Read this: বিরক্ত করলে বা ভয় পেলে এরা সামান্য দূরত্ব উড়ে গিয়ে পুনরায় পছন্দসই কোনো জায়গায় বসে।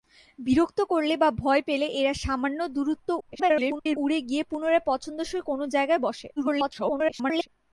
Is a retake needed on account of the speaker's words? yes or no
yes